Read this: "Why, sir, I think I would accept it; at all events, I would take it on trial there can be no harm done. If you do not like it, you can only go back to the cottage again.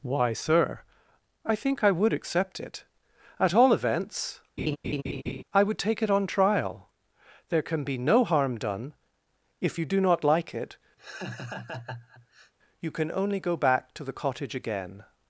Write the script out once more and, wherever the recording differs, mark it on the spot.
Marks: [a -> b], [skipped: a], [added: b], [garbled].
"Why, sir, I think I would accept it; at all events, I would take it on trial there can be no harm done. If you do not like it, you can only go back to the cottage again.